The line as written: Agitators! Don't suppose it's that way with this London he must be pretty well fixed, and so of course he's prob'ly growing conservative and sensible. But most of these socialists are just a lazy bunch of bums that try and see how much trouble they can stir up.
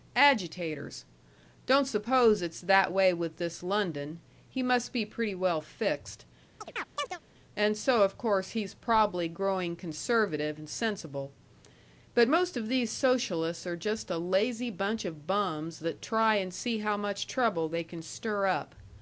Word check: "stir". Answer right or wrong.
right